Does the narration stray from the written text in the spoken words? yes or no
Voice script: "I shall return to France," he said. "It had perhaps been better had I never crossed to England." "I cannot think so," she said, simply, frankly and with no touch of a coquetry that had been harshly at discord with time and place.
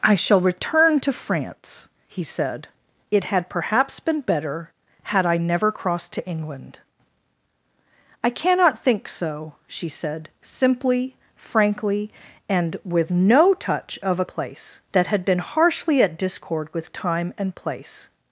yes